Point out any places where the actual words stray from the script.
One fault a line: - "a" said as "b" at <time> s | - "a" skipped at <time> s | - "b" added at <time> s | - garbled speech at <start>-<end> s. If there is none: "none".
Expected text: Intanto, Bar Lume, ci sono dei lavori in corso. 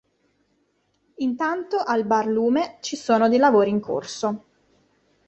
- "al" added at 1.8 s